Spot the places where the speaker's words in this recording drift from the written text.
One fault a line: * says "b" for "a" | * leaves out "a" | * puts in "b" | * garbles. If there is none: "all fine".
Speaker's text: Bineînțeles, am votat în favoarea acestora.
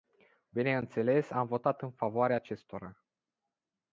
all fine